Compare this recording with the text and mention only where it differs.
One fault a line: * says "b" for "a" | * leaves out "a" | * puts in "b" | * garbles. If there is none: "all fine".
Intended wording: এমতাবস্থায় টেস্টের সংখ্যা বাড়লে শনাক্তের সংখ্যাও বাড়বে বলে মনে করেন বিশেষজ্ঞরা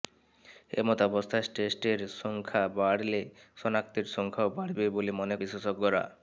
* leaves out "করেন"